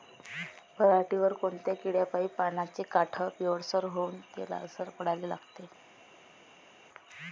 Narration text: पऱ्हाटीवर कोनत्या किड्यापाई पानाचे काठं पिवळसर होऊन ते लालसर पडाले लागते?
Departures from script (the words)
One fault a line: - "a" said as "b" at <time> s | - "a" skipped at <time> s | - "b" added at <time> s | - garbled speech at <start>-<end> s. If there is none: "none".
none